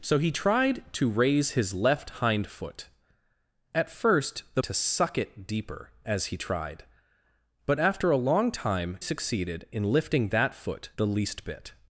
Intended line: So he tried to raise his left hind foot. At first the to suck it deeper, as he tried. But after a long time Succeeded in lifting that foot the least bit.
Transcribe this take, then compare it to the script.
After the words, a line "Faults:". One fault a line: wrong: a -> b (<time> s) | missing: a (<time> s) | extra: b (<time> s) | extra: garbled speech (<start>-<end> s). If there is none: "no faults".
So he tried to raise his left hind foot. At first the to suck it deeper, as he tried. But after a long time Succeeded in lifting that foot the least bit.
Faults:
no faults